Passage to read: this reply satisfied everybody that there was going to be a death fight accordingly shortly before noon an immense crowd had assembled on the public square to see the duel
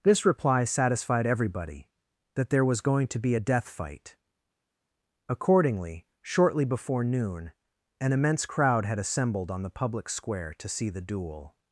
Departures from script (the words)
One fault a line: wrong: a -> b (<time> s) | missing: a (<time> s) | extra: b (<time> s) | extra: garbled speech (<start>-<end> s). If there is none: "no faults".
no faults